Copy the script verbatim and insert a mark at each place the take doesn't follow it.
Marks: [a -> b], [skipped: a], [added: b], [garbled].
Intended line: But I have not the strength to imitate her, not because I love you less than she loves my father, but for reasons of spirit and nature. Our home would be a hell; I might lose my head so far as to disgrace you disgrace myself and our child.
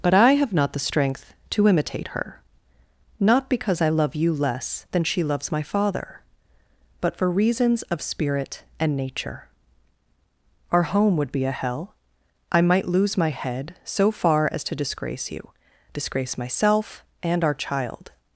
But I have not the strength to imitate her, not because I love you less than she loves my father, but for reasons of spirit and nature. Our home would be a hell; I might lose my head so far as to disgrace you disgrace myself and our child.